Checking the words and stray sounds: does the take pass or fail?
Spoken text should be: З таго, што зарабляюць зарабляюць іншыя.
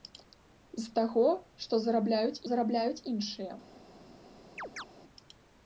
fail